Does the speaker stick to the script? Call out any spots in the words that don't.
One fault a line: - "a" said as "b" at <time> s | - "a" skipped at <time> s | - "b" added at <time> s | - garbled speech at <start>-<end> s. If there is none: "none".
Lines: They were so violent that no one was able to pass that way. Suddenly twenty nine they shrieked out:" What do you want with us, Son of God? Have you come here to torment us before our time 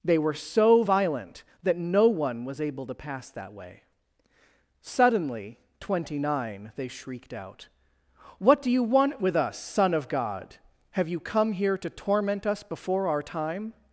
none